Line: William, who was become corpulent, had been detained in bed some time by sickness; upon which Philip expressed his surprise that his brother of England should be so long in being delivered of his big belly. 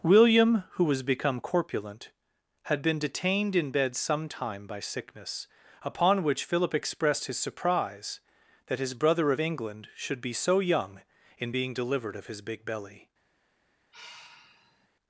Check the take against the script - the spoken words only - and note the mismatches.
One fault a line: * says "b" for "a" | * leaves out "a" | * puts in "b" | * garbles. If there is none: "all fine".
* says "young" for "long"